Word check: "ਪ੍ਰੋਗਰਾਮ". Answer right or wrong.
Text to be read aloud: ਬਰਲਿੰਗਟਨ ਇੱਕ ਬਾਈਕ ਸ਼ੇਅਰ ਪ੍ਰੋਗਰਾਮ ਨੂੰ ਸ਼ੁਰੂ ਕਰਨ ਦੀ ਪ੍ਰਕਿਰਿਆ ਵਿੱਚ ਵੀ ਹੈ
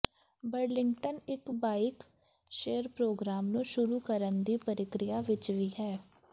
right